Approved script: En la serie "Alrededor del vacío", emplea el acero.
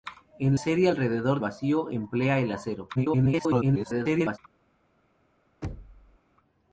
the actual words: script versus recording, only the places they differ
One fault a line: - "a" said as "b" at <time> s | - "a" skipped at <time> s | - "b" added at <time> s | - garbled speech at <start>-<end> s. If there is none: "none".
- "la" skipped at 0.6 s
- "del" skipped at 1.4 s
- garbled speech at 3.0-4.4 s